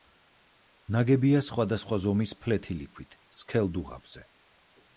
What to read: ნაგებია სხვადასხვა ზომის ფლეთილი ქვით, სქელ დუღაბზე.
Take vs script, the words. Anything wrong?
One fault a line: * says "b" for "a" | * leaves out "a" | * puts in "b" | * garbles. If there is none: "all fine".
all fine